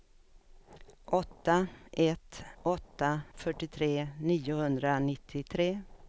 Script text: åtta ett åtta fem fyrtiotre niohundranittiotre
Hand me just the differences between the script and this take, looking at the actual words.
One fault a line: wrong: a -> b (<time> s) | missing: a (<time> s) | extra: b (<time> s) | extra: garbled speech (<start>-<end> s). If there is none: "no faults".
missing: fem (3.2 s)